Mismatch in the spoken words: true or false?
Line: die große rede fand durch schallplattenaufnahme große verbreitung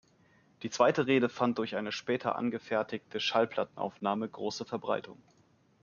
true